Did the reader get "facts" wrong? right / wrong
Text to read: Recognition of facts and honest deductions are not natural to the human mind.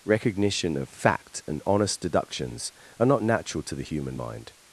wrong